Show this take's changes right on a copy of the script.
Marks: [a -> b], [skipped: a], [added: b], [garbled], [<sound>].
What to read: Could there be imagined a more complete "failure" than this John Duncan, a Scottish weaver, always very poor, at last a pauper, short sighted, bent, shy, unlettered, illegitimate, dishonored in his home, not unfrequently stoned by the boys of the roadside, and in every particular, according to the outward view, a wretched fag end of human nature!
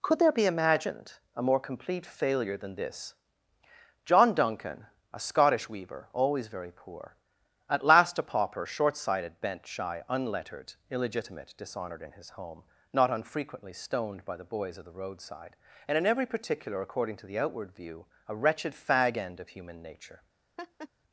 Could there be imagined a more complete "failure" than this John Duncan, a Scottish weaver, always very poor, at last a pauper, short sighted, bent, shy, unlettered, illegitimate, dishonored in his home, not unfrequently stoned by the boys of the roadside, and in every particular, according to the outward view, a wretched fag end of human nature! [laugh]